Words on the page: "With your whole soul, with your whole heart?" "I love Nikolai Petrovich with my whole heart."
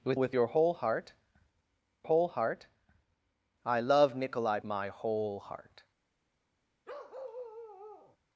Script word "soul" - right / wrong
wrong